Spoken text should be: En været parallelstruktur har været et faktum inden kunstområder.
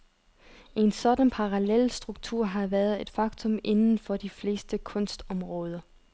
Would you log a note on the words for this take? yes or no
yes